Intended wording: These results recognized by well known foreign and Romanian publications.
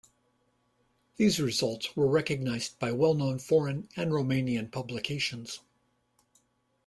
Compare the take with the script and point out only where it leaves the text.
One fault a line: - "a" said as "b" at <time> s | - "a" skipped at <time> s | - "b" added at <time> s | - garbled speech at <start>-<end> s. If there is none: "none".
- "were" added at 1.9 s